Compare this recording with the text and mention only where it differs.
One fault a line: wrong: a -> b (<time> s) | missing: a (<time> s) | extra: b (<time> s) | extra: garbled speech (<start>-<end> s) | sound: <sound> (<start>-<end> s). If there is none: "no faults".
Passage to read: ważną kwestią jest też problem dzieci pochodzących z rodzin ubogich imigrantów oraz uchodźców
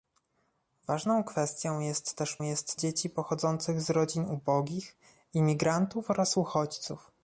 wrong: problem -> jest (2.4 s)